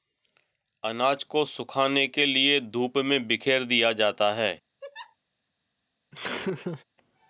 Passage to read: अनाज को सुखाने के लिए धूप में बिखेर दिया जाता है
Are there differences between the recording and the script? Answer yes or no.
no